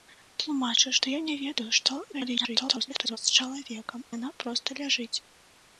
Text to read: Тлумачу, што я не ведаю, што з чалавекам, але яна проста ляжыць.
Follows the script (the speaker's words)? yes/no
no